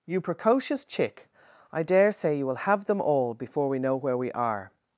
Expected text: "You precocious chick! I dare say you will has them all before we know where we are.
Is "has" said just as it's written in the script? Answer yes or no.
no